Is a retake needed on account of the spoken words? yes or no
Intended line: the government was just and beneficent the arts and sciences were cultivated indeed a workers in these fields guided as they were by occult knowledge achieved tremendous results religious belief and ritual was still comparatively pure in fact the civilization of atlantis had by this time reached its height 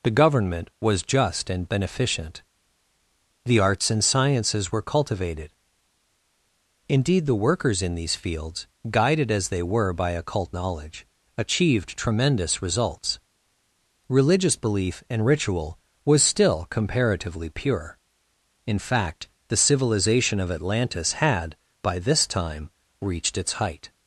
yes